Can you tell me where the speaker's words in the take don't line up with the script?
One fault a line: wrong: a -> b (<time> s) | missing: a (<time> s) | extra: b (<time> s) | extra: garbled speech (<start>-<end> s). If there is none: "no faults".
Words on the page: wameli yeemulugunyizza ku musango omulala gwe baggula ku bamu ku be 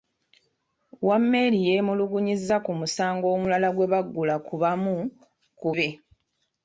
no faults